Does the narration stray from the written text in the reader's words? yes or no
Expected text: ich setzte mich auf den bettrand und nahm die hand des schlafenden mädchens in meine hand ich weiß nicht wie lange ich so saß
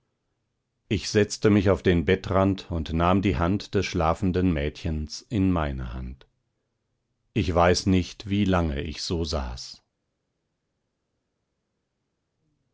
no